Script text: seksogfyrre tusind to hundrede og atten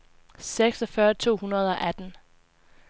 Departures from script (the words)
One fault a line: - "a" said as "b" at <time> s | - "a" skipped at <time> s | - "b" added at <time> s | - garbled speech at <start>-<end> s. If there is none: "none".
- "tusind" skipped at 1.1 s